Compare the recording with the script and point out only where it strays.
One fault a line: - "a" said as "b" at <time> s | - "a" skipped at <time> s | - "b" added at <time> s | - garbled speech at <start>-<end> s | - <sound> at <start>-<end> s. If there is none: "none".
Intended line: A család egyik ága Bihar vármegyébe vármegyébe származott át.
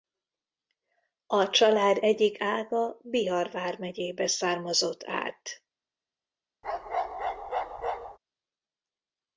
- "vármegyébe" skipped at 4.3 s
- bark at 6.6-8.2 s